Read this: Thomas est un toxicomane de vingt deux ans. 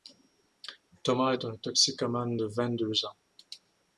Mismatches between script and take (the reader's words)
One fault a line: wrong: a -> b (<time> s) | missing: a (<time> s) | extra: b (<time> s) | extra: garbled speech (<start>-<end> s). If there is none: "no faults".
no faults